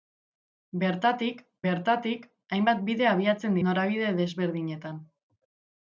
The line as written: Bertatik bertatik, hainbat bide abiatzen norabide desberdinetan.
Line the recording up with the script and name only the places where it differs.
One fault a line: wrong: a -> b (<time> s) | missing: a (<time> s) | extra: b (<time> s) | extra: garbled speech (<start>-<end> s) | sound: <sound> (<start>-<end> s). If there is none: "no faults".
no faults